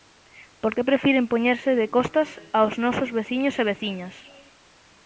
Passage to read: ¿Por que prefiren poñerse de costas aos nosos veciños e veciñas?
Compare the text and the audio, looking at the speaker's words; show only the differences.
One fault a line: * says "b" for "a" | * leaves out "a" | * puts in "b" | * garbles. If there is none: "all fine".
all fine